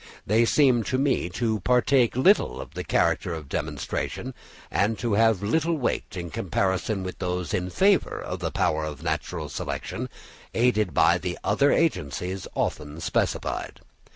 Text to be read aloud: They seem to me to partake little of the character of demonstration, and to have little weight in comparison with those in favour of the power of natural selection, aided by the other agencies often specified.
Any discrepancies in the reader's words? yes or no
no